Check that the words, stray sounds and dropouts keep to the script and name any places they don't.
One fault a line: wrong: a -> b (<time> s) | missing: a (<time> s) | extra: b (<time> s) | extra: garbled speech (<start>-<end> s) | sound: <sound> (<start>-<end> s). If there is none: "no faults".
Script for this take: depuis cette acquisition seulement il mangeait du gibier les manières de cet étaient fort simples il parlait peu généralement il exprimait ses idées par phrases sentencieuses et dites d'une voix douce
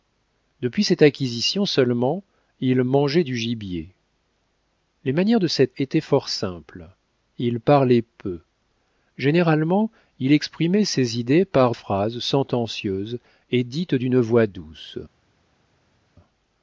no faults